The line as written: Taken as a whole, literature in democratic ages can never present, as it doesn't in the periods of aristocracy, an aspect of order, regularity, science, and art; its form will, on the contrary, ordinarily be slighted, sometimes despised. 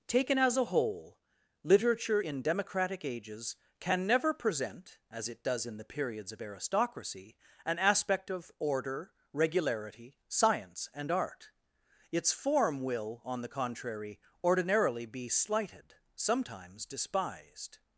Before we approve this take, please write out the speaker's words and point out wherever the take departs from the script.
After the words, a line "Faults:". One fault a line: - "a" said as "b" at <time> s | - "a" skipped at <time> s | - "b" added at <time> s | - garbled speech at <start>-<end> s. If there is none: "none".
Taken as a whole, literature in democratic ages can never present, as it does in the periods of aristocracy, an aspect of order, regularity, science, and art; its form will, on the contrary, ordinarily be slighted, sometimes despised.
Faults:
- "doesn't" said as "does" at 5.4 s